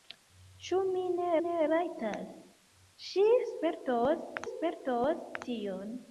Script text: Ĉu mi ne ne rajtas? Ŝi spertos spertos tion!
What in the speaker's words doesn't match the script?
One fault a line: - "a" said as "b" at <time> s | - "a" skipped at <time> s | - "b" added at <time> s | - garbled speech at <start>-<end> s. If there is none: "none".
none